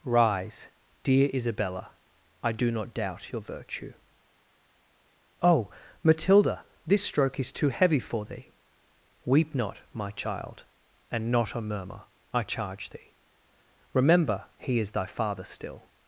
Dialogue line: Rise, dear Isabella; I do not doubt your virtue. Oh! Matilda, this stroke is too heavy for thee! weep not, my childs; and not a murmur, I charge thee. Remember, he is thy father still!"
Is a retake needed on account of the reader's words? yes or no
yes